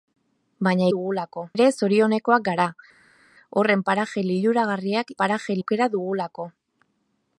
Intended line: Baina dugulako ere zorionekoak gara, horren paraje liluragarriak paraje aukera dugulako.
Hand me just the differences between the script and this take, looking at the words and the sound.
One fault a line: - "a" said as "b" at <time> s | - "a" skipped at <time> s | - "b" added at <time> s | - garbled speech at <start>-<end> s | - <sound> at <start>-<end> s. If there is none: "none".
none